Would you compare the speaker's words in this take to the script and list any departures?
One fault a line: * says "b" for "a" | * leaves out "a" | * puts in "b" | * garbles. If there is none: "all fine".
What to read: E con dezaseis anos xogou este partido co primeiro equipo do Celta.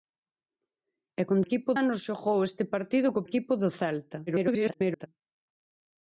* says "equipo" for "dezaseis"
* leaves out "primeiro"
* garbles